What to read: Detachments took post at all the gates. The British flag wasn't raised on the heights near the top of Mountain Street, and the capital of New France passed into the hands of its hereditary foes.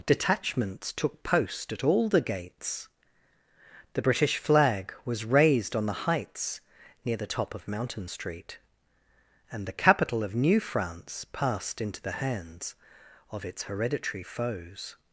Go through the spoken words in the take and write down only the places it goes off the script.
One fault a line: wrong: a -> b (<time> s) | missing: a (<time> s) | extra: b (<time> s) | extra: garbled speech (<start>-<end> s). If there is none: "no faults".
wrong: wasn't -> was (5.0 s)